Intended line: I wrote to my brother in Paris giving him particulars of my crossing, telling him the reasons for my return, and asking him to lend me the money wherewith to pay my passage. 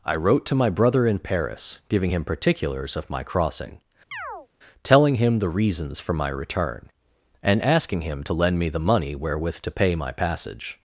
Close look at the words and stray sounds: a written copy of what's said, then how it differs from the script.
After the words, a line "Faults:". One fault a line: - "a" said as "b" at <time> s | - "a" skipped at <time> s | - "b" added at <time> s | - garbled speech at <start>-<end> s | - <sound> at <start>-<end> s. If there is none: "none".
I wrote to my brother in Paris giving him particulars of my crossing, telling him the reasons for my return, and asking him to lend me the money wherewith to pay my passage.
Faults:
- chirp at 4.1-4.5 s